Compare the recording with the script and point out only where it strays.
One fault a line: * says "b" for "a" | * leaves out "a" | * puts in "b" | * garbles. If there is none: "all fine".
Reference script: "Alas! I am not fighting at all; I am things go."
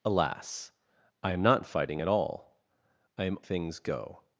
all fine